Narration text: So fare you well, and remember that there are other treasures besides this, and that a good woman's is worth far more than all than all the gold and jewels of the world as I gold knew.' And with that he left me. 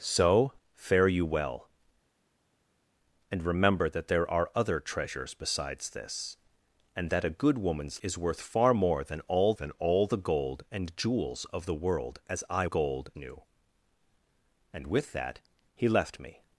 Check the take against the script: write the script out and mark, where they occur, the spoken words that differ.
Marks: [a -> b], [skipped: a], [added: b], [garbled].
So fare you well, and remember that there are other treasures besides this, and that a good woman's is worth far more than all than all the gold and jewels of the world as I gold knew.' And with that he left me.